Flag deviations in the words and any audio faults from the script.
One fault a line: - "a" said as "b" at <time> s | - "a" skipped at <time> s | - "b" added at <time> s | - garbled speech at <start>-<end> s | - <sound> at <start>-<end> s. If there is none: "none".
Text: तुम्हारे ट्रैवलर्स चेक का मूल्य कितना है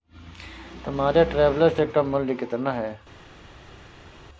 none